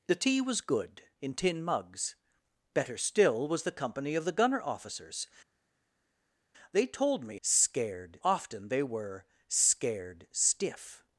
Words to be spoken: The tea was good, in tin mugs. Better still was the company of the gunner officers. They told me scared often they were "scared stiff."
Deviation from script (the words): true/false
false